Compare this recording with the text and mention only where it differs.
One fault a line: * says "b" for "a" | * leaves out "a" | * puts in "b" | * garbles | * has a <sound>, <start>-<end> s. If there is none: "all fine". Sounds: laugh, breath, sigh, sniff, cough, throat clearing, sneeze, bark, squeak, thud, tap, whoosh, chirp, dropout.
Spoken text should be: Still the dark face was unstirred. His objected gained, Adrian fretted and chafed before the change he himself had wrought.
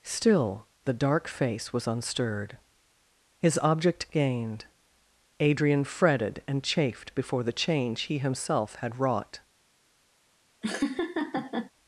* says "object" for "objected"
* has a laugh, 10.6-11.7 s